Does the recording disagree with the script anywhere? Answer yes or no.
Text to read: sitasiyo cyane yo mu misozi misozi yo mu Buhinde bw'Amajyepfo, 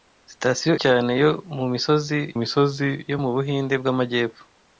no